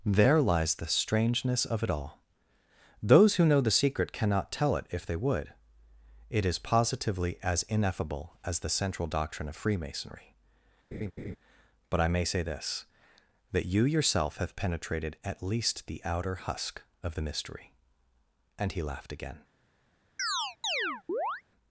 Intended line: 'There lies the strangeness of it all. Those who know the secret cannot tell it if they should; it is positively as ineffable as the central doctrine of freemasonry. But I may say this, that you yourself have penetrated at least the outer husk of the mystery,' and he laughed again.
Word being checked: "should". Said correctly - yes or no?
no